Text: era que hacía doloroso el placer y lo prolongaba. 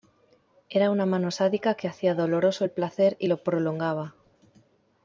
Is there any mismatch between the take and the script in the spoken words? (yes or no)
yes